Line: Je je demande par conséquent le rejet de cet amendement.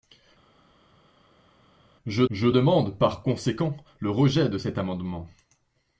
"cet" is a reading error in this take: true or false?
false